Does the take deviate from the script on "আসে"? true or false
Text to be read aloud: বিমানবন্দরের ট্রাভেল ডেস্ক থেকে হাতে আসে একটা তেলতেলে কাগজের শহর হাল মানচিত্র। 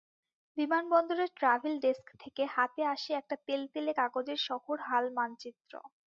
false